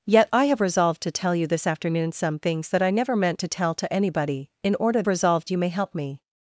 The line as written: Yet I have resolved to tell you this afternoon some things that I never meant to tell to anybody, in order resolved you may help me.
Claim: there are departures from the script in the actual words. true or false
false